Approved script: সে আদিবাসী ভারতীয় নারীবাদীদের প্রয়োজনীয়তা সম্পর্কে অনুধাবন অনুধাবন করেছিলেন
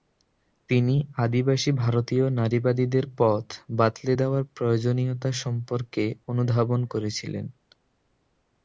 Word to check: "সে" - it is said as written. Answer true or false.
false